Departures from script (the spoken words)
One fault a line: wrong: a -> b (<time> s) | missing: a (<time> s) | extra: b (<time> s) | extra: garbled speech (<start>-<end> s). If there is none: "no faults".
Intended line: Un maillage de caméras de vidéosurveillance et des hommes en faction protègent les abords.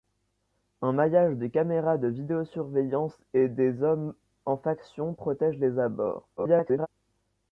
extra: garbled speech (6.4-6.9 s)